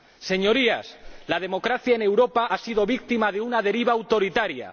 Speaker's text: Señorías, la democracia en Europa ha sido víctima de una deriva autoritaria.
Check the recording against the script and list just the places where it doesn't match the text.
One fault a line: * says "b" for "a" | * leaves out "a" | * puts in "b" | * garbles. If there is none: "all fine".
all fine